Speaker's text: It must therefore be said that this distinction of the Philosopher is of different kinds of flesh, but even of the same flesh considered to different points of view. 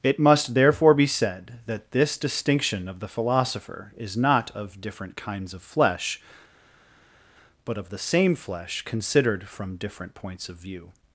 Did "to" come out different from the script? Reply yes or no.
yes